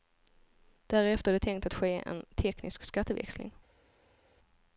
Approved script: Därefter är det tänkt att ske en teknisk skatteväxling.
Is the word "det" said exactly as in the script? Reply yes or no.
yes